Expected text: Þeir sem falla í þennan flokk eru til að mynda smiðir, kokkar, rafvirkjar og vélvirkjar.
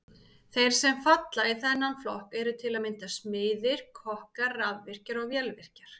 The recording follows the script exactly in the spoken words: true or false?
true